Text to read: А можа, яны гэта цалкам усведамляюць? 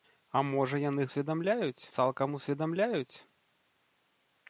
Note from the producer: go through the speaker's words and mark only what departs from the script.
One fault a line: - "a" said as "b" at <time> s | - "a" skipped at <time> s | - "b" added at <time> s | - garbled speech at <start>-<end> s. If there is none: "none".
- "гэта" said as "усведамляюць" at 1.1 s